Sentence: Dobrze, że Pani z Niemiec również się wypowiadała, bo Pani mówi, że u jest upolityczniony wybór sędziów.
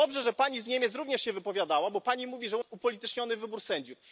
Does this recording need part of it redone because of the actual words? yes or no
no